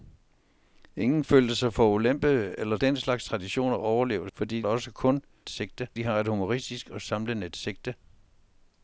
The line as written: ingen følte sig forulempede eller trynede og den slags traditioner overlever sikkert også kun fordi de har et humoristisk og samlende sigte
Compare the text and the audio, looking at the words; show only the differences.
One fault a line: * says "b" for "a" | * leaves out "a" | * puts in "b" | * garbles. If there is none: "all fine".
* leaves out "trynede og"
* says "fordi" for "sikkert"
* says "sigte" for "fordi"